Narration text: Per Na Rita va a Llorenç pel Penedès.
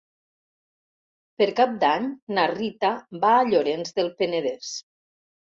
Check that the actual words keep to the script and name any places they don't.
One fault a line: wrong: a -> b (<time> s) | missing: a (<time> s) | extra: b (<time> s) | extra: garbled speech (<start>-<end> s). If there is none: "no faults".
extra: Cap d'Any (1.6 s)
wrong: pel -> del (4.0 s)